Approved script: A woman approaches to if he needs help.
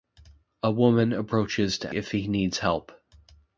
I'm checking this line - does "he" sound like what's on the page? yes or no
yes